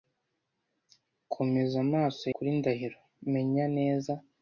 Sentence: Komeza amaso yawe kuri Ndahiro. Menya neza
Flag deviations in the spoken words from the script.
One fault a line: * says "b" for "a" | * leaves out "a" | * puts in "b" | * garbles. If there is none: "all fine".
* leaves out "yawe"